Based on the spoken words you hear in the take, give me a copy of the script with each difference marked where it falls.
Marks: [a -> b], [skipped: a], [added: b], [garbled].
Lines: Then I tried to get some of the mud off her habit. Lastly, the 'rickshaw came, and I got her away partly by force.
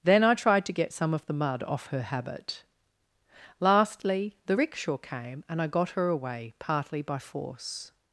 Then I tried to get some of the mud off her habit. Lastly, the 'rickshaw came, and I got her away partly by force.